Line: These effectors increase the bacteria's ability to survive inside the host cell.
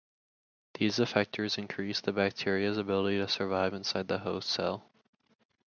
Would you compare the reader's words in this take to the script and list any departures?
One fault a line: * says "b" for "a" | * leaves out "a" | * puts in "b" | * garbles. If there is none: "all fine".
all fine